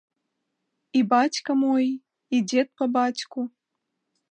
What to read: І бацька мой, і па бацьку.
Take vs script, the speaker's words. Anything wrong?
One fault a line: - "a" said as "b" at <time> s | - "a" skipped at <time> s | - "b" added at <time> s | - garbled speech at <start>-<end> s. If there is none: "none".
- "дзед" added at 2.5 s